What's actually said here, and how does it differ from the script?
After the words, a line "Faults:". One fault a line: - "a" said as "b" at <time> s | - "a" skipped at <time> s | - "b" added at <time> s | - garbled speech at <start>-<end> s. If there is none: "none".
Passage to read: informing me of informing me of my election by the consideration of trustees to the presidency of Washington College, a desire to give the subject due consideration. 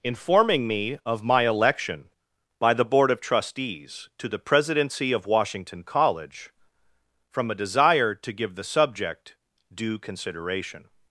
informing me of my election by the board of trustees to the presidency of Washington College, from a desire to give the subject due consideration.
Faults:
- "informing me of" skipped at 1.2 s
- "consideration" said as "board" at 2.9 s
- "from" added at 7.3 s